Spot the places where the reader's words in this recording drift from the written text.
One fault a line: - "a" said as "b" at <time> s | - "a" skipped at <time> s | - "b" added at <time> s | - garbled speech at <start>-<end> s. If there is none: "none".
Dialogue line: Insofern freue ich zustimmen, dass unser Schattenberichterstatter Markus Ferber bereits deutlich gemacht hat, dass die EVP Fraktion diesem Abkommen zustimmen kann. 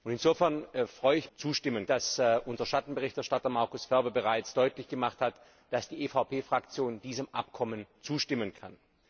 none